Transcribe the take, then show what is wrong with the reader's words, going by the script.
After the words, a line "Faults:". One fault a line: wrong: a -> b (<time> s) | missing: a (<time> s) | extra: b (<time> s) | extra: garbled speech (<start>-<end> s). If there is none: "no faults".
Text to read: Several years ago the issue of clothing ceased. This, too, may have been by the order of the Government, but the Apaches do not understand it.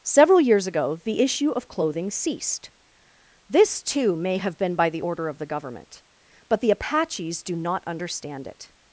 Several years ago the issue of clothing ceased. This, too, may have been by the order of the Government, but the Apaches do not understand it.
Faults:
no faults